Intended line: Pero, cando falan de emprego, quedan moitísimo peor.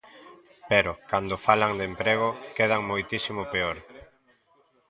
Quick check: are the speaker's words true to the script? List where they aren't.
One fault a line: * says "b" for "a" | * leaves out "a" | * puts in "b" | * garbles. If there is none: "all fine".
all fine